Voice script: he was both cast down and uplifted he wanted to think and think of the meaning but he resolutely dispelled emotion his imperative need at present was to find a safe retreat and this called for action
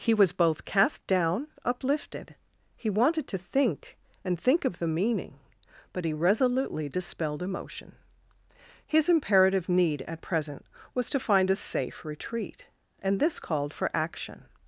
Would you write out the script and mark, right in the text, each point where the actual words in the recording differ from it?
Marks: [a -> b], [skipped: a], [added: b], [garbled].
he was both cast down [skipped: and] uplifted he wanted to think and think of the meaning but he resolutely dispelled emotion his imperative need at present was to find a safe retreat and this called for action